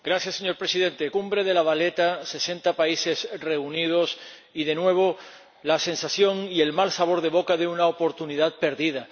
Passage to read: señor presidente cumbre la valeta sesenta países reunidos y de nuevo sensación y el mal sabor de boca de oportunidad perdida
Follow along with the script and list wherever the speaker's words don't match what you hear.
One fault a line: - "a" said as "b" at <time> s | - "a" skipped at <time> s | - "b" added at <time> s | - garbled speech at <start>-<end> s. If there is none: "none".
- "de" added at 1.4 s
- "la" added at 5.6 s
- "una" added at 7.7 s